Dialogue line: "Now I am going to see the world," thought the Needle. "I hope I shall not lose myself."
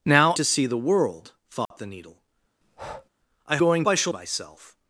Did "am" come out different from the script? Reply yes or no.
yes